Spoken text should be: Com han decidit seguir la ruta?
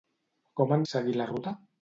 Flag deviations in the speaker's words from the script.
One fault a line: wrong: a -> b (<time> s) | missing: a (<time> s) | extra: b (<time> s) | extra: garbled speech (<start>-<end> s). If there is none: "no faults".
missing: decidit (0.9 s)